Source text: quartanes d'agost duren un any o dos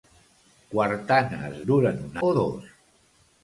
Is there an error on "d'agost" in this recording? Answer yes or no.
yes